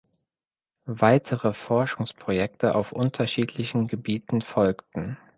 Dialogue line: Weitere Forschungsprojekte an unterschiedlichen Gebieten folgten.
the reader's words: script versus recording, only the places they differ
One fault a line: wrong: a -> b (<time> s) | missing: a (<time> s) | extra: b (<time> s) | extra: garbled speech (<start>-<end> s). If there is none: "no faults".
wrong: an -> auf (2.7 s)